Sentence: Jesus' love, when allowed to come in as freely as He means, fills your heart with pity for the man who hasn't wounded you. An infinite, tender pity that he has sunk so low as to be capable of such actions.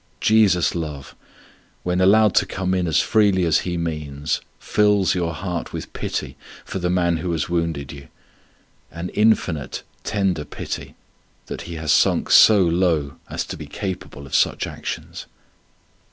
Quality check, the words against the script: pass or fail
fail